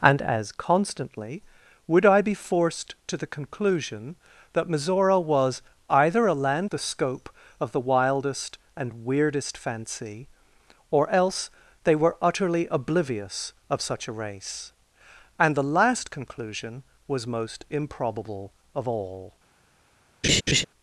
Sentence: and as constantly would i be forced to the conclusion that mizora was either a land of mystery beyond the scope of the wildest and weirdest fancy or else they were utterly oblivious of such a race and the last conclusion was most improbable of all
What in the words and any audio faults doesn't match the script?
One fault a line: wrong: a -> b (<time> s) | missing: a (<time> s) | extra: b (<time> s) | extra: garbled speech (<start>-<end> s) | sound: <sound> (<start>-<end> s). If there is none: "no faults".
missing: of mystery beyond (6.7 s)
sound: laugh (20.2-20.6 s)